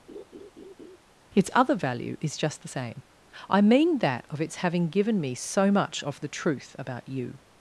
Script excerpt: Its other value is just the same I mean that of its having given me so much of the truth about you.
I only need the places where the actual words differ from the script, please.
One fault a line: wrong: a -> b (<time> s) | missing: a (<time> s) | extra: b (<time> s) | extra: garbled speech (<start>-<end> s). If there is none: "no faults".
no faults